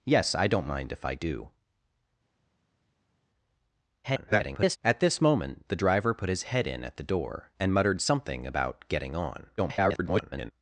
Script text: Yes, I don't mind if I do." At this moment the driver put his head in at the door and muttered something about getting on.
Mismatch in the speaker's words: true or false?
true